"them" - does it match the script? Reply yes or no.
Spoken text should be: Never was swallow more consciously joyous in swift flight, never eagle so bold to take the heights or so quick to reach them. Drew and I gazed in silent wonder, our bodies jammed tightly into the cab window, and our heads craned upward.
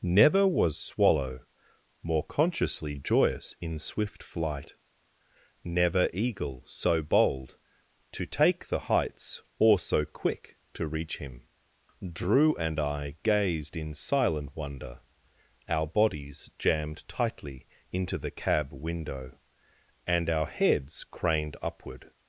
no